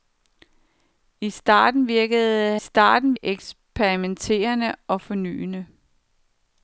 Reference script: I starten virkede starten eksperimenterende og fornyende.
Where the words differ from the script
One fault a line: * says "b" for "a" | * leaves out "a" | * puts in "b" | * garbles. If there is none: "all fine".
all fine